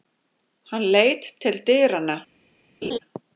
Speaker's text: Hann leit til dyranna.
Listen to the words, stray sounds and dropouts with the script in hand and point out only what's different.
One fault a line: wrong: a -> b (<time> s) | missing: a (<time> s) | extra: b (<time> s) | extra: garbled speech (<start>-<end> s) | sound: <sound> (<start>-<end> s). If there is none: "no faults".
sound: laugh (2.8-3.0 s)